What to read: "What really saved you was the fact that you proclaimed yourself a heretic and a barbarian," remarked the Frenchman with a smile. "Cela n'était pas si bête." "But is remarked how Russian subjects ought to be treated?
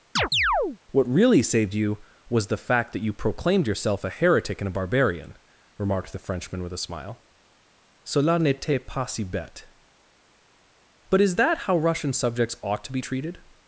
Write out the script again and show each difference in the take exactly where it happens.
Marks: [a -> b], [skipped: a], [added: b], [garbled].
"What really saved you was the fact that you proclaimed yourself a heretic and a barbarian," remarked the Frenchman with a smile. "Cela n'était pas si bête." "But is [remarked -> that] how Russian subjects ought to be treated?